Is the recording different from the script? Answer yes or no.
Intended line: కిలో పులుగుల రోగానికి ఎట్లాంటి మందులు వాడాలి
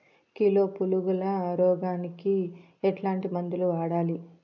no